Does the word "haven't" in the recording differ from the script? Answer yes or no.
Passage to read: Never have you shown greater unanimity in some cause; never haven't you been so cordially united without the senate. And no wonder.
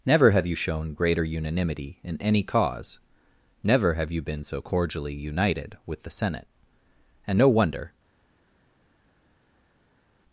yes